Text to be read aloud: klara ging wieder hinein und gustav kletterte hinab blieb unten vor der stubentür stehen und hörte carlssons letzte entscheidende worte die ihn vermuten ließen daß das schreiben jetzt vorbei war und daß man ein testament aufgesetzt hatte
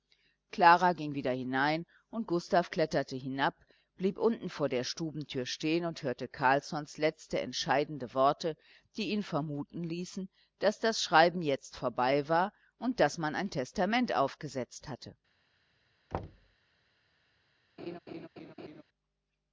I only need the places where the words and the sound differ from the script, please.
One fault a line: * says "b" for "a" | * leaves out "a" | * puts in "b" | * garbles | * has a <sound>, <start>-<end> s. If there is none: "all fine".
* has a thud, 16.1-16.6 s
* has a laugh, 17.8-18.8 s